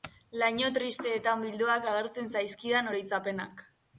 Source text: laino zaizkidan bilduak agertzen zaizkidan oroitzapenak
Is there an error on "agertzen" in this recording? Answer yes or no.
no